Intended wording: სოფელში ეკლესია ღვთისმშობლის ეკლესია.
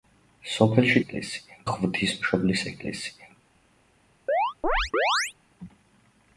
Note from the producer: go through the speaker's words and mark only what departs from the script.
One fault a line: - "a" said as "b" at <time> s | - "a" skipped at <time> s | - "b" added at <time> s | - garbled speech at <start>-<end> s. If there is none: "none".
none